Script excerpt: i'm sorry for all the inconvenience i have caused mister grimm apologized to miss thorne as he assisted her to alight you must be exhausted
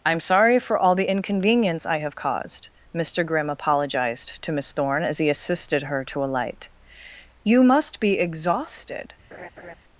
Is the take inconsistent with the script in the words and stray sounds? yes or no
yes